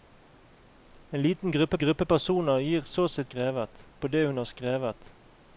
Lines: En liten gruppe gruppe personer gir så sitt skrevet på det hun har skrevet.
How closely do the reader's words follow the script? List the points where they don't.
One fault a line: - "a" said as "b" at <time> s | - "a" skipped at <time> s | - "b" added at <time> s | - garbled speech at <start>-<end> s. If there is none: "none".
none